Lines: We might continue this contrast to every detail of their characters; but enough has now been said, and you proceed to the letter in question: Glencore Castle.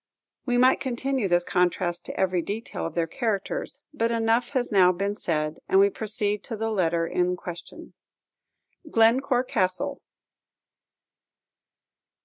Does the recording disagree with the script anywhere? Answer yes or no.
yes